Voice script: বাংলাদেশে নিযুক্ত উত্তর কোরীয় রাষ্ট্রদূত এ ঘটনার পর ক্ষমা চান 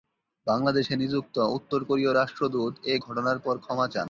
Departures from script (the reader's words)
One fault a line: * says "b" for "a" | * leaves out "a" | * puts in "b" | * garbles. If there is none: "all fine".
all fine